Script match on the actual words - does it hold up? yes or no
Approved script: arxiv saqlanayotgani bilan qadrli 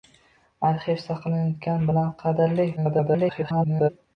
no